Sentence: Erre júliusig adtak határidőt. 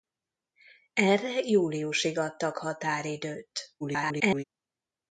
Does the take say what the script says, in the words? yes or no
no